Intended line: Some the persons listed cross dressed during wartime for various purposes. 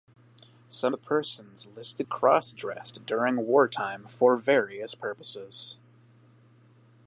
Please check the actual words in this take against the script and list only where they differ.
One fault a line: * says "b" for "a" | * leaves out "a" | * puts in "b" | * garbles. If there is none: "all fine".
all fine